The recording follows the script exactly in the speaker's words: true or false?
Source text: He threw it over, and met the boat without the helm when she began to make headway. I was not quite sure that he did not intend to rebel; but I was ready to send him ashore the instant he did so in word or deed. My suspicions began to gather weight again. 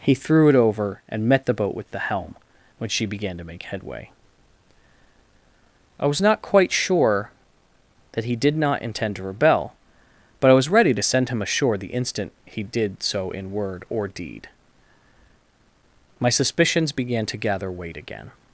false